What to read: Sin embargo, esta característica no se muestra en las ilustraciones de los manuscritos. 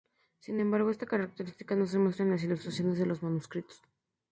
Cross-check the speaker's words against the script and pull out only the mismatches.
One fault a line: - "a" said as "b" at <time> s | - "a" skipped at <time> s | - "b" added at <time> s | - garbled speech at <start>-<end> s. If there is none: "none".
none